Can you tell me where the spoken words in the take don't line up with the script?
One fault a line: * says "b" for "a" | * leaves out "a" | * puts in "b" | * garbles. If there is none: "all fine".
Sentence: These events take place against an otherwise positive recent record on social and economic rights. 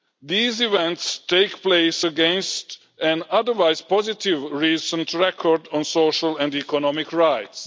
all fine